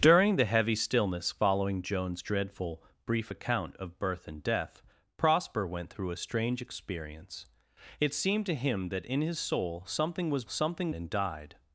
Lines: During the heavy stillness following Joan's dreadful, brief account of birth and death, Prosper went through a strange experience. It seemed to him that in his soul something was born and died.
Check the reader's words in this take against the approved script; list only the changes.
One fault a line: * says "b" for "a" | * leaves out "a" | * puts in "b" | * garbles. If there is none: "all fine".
* says "something" for "born"